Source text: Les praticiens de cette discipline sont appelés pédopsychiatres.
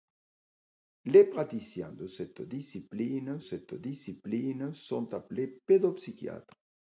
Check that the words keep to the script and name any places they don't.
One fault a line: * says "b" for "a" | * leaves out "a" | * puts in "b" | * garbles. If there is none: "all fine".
* puts in "cette discipline"